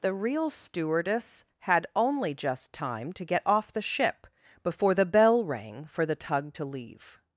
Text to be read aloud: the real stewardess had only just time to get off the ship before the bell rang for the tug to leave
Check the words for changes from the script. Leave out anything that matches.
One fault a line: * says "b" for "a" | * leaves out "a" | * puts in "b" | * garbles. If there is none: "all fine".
all fine